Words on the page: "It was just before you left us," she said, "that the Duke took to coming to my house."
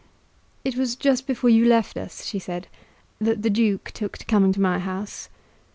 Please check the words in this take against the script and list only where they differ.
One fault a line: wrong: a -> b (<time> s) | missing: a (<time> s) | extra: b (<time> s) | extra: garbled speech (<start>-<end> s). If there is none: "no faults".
no faults